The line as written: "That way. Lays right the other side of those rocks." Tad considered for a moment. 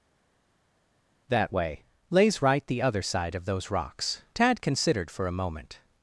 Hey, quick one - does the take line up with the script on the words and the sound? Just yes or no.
yes